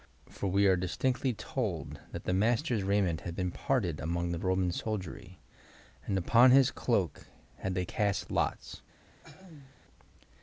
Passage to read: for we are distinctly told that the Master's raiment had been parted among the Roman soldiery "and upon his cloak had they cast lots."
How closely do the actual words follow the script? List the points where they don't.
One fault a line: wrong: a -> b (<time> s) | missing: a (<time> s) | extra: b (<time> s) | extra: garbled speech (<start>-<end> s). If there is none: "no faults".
no faults